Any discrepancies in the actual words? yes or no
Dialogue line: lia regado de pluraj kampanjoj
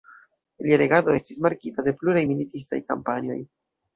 yes